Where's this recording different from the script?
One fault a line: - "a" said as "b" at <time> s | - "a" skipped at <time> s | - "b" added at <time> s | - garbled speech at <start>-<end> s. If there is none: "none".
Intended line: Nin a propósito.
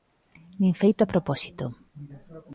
- "feito" added at 0.8 s